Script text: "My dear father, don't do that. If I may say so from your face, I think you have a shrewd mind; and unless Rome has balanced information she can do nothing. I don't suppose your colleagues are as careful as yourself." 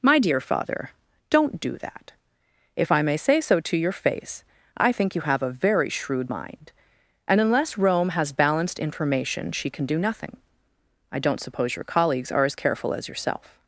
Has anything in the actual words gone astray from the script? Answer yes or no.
yes